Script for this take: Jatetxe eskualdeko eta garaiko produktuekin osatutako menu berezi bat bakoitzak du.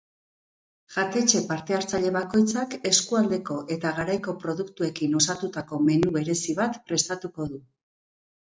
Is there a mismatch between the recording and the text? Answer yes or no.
yes